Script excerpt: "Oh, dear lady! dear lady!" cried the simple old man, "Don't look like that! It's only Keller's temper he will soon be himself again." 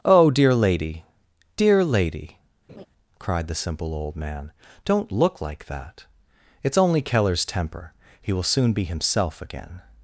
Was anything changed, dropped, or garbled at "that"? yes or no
no